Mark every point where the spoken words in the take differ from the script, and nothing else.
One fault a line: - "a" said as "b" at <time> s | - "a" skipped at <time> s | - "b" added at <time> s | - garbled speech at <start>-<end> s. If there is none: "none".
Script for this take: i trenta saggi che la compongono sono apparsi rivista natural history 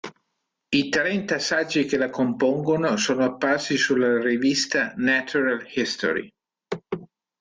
- "sulla" added at 3.8 s